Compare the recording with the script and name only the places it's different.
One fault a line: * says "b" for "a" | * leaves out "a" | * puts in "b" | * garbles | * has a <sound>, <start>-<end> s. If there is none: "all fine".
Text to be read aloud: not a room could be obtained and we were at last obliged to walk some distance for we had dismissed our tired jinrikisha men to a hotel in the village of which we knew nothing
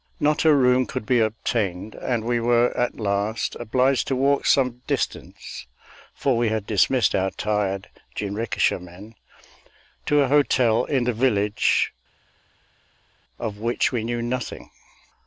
all fine